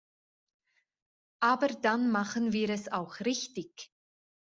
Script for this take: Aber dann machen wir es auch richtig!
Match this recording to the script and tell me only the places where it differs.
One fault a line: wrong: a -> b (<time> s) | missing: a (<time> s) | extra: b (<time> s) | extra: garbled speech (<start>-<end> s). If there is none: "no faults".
no faults